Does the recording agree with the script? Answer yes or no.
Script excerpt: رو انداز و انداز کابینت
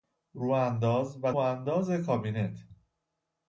yes